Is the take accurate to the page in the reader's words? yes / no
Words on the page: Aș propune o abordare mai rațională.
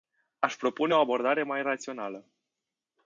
yes